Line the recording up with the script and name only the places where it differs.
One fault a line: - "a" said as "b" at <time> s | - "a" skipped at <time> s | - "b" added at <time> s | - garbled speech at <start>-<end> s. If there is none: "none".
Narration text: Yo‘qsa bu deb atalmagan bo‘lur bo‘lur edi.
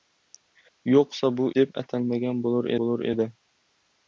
none